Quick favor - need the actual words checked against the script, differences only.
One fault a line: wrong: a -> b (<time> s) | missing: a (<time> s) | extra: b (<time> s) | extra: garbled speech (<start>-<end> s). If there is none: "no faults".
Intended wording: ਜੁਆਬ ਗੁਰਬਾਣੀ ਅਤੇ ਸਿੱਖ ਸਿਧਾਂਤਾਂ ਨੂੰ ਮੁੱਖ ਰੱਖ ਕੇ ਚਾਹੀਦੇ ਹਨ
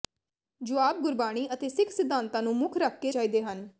no faults